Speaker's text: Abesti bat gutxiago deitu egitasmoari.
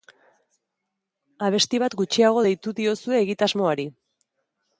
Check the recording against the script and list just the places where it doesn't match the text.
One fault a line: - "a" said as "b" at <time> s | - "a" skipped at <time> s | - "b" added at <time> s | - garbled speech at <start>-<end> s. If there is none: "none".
- "diozue" added at 2.8 s